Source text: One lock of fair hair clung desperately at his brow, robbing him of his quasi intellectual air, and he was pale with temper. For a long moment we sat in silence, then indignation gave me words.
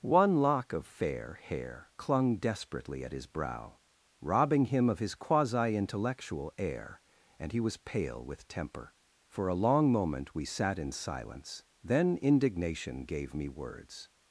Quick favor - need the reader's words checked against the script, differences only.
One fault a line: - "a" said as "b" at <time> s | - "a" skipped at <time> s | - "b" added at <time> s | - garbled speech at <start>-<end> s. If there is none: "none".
none